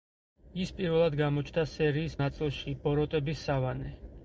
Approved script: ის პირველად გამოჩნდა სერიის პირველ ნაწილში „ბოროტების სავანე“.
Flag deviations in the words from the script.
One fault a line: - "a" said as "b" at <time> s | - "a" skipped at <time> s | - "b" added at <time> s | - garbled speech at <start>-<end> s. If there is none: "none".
- "პირველ" skipped at 2.2 s